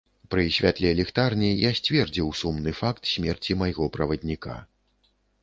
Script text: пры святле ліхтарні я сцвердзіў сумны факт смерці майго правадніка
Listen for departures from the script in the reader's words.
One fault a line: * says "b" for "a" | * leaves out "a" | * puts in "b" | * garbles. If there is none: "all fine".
all fine